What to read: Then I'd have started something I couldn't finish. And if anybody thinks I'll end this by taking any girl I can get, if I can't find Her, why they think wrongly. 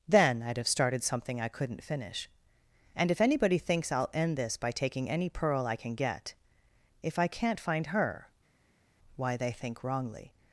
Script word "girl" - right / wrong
wrong